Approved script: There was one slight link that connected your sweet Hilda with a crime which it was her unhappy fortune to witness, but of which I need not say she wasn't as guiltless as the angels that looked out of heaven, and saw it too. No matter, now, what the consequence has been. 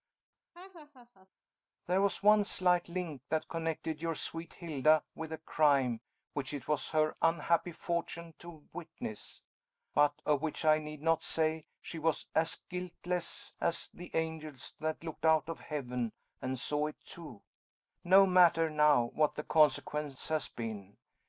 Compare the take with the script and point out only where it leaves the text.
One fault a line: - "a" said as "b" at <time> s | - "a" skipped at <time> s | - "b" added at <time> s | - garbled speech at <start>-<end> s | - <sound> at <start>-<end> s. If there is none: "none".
- laugh at 0.5-1.3 s
- "wasn't" said as "was" at 12.0 s